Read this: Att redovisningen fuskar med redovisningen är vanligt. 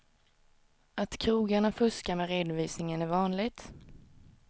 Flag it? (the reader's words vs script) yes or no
yes